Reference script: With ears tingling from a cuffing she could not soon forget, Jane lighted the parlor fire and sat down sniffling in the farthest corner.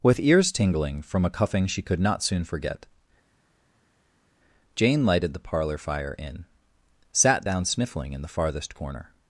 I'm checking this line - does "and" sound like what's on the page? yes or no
no